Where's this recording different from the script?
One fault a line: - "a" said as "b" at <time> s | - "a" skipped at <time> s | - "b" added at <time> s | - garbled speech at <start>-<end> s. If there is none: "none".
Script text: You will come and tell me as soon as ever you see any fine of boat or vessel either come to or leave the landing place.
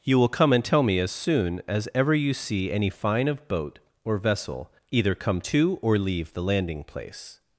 none